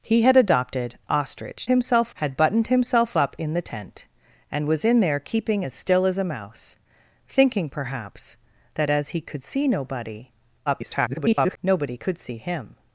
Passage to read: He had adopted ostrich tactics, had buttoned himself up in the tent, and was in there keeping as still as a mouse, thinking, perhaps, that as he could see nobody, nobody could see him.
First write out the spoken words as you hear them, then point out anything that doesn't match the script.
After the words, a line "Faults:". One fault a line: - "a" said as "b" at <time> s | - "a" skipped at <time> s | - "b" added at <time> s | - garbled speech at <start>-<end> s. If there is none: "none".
He had adopted ostrich himself, had buttoned himself up in the tent, and was in there keeping as still as a mouse, thinking, perhaps, that as he could see nobody, [garbled] nobody could see him.
Faults:
- "tactics" said as "himself" at 1.7 s
- garbled speech at 10.7-11.6 s